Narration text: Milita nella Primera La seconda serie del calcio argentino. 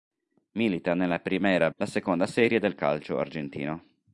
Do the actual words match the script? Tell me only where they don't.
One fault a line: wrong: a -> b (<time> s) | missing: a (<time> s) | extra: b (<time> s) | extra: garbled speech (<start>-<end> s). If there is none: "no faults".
no faults